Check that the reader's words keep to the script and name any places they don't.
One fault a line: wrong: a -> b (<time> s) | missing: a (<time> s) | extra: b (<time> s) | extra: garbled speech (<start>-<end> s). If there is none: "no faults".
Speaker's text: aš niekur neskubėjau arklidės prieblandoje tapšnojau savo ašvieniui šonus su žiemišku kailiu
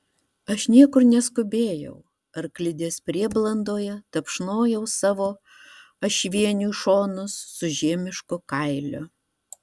no faults